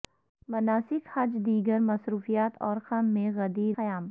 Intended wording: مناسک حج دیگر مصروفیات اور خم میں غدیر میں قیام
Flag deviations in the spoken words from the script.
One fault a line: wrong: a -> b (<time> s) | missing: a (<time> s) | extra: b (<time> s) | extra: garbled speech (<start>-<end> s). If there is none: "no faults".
missing: میں (3.8 s)